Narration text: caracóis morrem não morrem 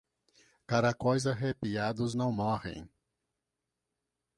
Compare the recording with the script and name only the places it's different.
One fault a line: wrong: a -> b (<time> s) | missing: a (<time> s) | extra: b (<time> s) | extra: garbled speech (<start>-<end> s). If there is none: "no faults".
wrong: morrem -> arrepiados (1.3 s)